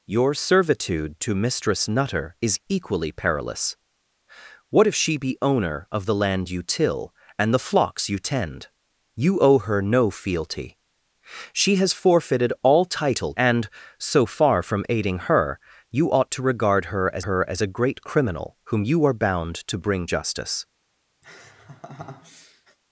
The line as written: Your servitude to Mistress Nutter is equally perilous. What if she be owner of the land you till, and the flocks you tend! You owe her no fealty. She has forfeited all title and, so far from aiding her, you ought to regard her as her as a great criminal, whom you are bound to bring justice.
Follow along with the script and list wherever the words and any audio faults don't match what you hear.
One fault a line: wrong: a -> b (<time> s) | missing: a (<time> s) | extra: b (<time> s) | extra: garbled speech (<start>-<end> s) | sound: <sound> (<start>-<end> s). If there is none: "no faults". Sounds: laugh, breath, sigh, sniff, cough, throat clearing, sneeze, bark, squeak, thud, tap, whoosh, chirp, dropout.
sound: laugh (21.2-22.8 s)